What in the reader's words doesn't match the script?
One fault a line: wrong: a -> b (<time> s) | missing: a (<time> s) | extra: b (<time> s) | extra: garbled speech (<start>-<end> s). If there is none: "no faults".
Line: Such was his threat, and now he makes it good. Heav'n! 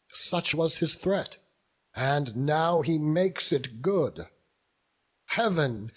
no faults